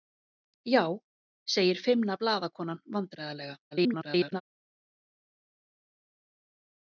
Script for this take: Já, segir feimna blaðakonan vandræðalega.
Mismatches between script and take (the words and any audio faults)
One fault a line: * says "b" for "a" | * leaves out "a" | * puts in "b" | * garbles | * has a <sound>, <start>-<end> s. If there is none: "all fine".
* garbles